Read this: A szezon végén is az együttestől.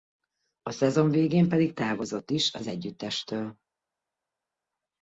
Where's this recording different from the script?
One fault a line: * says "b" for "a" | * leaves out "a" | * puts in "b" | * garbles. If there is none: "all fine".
* puts in "pedig távozott"